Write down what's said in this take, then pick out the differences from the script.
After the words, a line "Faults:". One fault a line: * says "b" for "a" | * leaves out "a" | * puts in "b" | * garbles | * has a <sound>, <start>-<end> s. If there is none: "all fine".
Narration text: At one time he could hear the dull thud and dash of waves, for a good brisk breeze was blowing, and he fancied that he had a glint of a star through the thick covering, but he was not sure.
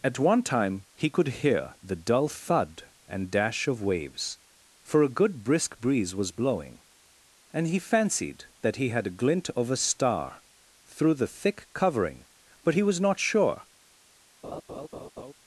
At one time he could hear the dull thud and dash of waves, for a good brisk breeze was blowing, and he fancied that he had a glint of a star through the thick covering, but he was not sure.
Faults:
* has a laugh, 14.4-15.3 s